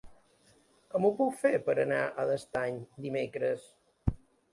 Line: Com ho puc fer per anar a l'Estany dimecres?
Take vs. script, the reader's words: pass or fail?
pass